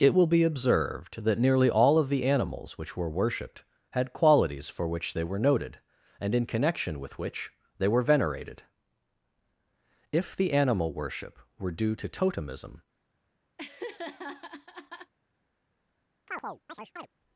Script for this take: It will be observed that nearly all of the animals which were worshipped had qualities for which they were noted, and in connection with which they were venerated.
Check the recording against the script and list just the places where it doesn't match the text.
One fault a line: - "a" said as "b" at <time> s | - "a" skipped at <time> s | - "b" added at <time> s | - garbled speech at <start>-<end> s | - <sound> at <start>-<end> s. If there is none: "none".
- "If the animal worship were due to totemism" added at 10.1 s
- laugh at 13.6-15.1 s
- chirp at 16.3-17.1 s